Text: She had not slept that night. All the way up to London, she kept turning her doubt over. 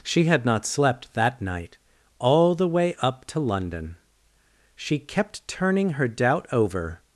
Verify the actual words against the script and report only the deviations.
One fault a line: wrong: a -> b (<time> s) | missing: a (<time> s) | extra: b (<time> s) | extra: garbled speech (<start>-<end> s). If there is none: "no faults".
no faults